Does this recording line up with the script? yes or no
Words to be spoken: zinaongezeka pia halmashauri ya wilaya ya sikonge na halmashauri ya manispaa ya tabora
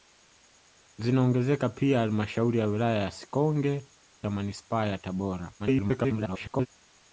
no